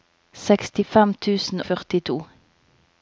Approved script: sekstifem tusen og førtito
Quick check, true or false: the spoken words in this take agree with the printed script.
false